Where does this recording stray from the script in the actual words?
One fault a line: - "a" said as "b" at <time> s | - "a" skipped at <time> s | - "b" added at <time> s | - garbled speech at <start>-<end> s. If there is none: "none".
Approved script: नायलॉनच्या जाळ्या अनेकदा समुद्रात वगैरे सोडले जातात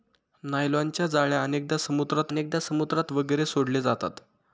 - "अनेकदा समुद्रात" added at 2.3 s